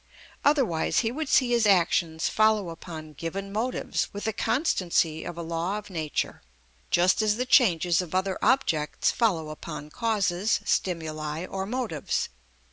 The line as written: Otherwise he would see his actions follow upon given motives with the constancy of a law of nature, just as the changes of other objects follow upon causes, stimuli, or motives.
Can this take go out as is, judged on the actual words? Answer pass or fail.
pass